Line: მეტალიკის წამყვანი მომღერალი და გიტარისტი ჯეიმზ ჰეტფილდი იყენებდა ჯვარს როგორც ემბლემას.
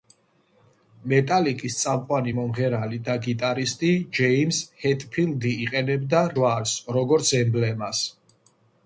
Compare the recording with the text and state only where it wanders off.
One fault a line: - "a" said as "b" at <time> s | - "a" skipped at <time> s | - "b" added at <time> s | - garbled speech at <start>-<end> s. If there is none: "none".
none